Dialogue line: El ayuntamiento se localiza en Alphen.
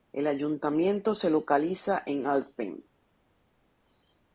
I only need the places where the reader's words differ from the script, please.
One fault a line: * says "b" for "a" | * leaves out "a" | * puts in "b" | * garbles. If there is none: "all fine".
all fine